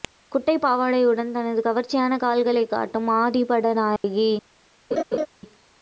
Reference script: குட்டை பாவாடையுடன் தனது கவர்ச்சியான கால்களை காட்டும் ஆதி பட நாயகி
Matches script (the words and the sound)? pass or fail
fail